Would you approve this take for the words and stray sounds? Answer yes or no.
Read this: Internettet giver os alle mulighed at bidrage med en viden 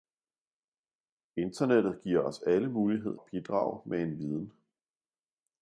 yes